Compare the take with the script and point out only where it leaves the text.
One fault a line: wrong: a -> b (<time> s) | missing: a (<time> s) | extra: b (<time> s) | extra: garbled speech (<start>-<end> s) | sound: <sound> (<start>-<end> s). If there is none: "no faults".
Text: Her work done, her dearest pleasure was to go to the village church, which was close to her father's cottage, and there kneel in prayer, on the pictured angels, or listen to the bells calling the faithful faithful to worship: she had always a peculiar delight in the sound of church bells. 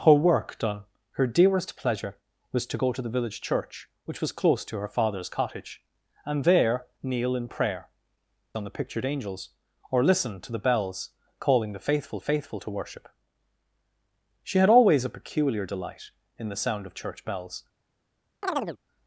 sound: chirp (18.4-18.8 s)